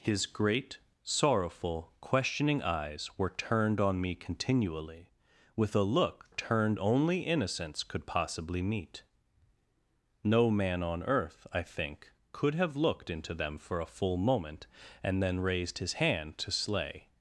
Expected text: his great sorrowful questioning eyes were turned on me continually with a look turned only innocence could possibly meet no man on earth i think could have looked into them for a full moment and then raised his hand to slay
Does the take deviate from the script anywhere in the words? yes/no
no